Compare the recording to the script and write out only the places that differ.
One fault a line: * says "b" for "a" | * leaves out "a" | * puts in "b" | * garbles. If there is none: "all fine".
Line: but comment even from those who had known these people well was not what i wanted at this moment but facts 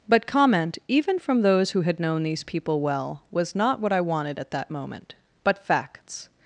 * says "that" for "this"